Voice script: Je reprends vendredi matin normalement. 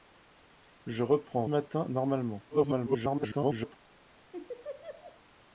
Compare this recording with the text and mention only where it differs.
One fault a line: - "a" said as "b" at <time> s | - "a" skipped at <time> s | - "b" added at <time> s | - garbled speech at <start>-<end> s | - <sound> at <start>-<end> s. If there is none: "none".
- "vendredi" skipped at 1.4 s
- garbled speech at 2.5-3.8 s
- laugh at 4.3-5.2 s